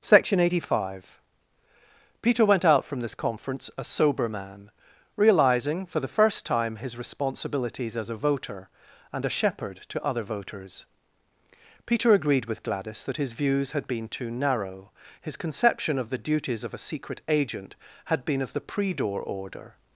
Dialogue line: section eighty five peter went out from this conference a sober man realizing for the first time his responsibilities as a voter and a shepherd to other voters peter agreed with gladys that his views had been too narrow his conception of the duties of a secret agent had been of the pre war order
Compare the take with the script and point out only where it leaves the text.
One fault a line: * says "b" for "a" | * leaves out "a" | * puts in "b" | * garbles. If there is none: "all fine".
* says "door" for "war"